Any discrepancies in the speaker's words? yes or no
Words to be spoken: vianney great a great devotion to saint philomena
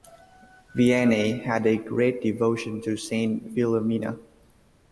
yes